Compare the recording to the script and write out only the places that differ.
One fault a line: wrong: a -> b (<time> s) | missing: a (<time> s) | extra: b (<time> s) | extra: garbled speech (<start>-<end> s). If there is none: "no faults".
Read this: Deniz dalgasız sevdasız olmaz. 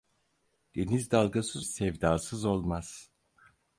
no faults